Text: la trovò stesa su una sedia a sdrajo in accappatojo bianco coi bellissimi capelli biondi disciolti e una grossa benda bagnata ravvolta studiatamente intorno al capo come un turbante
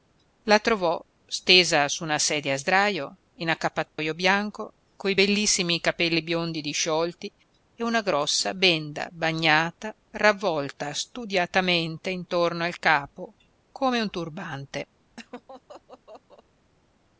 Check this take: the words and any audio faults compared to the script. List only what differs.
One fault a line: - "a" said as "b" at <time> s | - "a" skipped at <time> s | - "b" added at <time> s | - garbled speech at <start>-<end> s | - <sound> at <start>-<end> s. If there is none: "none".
- dropout at 3.9-4.0 s
- laugh at 15.2-16.4 s